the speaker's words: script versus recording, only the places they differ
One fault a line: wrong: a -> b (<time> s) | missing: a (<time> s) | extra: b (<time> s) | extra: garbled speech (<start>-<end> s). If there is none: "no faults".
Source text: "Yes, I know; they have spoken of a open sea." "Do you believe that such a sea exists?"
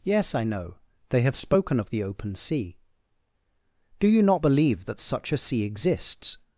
wrong: a -> the (1.9 s)
extra: not (4.2 s)